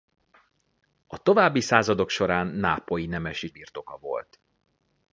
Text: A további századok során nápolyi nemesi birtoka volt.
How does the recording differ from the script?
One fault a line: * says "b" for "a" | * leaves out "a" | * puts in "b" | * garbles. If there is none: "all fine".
all fine